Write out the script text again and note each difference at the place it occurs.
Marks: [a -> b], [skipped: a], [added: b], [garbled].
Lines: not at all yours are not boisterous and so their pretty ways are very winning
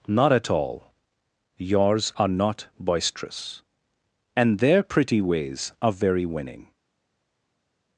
not at all yours are not boisterous and [skipped: so] their pretty ways are very winning